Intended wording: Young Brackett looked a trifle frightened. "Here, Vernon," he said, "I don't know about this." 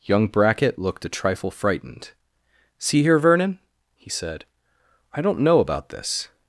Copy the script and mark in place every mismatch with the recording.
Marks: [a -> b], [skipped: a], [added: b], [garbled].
Young Brackett looked a trifle frightened. [added: See] "Here, Vernon," he said, "I don't know about this."